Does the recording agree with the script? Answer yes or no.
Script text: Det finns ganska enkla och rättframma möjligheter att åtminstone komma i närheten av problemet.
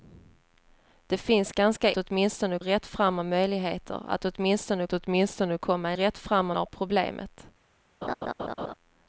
no